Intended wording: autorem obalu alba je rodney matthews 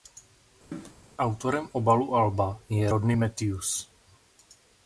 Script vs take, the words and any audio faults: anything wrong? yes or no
yes